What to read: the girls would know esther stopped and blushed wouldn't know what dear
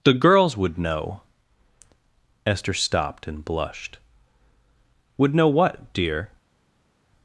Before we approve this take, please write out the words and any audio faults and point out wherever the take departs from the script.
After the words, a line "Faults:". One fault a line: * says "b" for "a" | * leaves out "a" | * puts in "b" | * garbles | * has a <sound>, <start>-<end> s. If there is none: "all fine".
the girls would know esther stopped and blushed would know what dear
Faults:
* says "would" for "wouldn't"